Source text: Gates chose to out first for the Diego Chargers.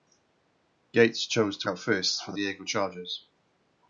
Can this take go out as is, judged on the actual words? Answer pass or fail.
pass